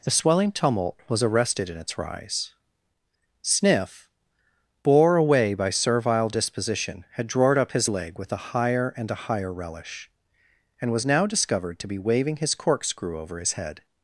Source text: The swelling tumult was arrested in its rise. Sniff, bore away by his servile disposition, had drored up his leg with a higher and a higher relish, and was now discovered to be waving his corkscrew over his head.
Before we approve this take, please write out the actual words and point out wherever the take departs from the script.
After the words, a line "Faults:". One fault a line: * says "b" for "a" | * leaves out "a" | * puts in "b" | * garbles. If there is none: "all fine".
The swelling tumult was arrested in its rise. Sniff, bore away by servile disposition, had drored up his leg with a higher and a higher relish, and was now discovered to be waving his corkscrew over his head.
Faults:
* leaves out "his"